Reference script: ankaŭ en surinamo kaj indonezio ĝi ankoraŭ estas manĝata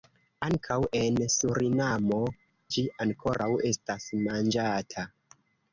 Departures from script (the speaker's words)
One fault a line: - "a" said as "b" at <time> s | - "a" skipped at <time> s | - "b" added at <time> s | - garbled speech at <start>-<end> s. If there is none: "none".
- "kaj indonezio" skipped at 2.2 s